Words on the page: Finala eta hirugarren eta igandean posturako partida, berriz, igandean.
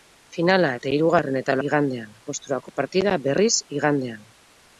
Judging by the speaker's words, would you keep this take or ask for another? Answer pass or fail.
pass